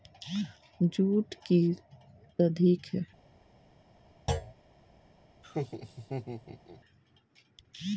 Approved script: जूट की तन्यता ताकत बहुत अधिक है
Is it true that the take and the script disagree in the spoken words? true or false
true